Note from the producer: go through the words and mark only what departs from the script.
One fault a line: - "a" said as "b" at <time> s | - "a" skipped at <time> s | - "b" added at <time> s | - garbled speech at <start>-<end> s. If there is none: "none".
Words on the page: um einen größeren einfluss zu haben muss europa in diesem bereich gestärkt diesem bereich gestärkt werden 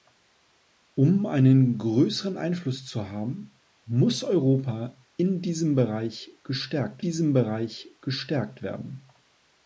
none